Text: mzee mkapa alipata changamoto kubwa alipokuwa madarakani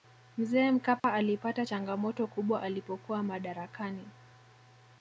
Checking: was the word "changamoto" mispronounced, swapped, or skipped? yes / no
no